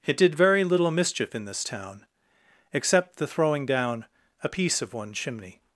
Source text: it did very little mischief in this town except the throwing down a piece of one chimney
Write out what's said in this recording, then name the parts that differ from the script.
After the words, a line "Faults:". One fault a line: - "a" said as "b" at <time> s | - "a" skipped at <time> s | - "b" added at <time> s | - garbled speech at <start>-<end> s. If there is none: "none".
it did very little mischief in this town except the throwing down a piece of one chimney
Faults:
none